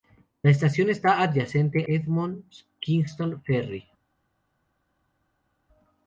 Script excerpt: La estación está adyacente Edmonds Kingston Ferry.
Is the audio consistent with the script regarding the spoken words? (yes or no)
yes